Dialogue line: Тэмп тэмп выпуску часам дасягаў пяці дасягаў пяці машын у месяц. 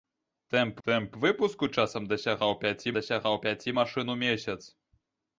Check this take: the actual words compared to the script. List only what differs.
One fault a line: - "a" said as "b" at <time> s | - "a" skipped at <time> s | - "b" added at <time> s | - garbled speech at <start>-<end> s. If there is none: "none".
none